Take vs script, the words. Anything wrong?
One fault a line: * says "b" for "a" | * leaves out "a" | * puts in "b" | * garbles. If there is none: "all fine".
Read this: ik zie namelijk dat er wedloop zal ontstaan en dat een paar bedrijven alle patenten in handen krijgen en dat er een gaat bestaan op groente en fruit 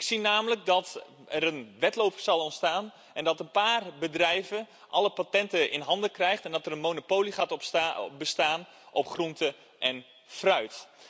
* puts in "een"
* puts in "monopolie"